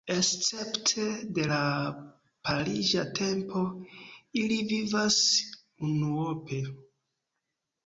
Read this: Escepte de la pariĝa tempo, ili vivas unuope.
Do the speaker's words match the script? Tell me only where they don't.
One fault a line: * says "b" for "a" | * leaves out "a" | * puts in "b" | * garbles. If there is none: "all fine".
all fine